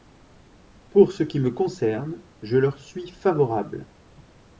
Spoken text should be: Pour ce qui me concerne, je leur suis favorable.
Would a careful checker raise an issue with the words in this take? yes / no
no